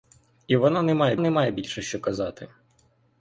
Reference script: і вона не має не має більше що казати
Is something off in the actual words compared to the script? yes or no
no